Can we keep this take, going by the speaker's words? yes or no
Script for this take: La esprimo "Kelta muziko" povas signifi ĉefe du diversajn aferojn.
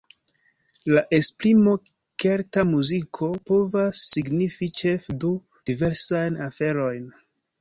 yes